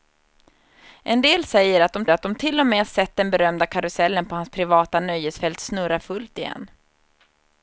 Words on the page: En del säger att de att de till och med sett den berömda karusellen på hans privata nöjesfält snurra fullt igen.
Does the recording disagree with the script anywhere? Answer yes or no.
no